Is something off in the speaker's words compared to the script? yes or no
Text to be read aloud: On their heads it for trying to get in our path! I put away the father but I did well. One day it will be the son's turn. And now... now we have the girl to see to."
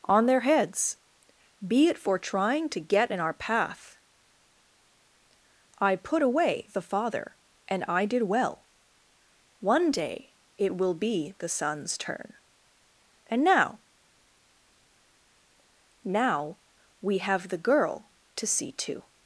yes